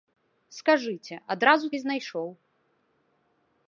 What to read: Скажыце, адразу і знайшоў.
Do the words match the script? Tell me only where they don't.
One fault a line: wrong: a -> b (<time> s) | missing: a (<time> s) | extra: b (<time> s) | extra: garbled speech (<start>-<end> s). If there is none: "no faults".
no faults